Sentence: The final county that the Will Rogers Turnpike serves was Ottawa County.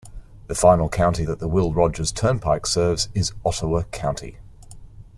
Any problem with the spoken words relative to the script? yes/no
yes